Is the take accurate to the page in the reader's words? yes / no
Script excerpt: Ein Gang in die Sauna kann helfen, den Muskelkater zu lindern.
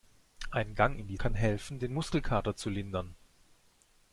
no